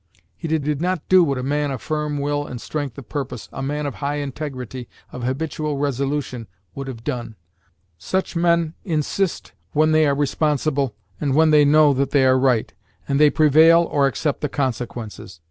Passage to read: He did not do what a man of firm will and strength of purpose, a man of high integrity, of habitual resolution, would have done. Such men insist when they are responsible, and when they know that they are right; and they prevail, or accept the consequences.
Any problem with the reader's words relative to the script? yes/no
yes